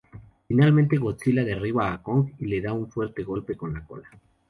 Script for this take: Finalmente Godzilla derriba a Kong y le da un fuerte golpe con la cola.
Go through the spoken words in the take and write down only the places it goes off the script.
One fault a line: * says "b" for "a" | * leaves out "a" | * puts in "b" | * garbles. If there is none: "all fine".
all fine